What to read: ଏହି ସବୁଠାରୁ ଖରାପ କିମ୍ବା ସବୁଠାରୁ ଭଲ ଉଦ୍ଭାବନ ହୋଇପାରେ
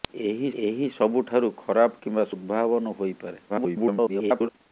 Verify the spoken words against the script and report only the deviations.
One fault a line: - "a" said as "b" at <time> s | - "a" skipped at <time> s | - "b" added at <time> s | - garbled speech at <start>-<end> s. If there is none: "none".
- "ଏହି" added at 0.6 s
- "ସବୁଠାରୁ ଭଲ" skipped at 2.3 s
- garbled speech at 3.5-4.5 s